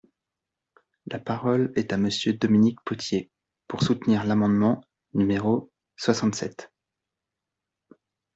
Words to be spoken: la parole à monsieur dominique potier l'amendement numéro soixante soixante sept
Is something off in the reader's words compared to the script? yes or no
yes